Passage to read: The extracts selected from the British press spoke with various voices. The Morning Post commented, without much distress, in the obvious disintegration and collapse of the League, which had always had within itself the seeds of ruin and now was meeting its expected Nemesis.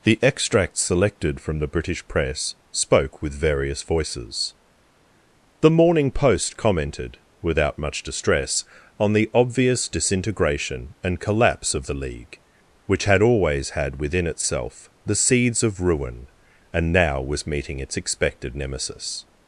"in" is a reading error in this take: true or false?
true